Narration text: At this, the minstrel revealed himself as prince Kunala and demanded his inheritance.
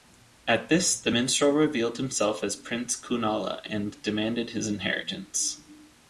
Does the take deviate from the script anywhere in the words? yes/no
no